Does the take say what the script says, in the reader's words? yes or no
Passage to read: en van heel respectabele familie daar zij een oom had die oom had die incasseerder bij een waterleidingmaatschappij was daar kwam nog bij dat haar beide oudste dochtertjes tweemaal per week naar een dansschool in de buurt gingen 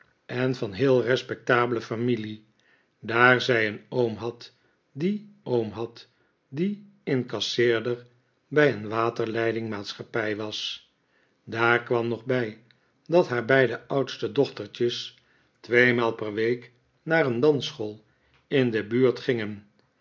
yes